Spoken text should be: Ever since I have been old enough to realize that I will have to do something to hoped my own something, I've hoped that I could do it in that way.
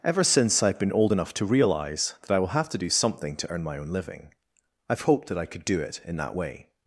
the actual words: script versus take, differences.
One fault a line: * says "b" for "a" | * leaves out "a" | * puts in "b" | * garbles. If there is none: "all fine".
* says "earn" for "hoped"
* says "living" for "something"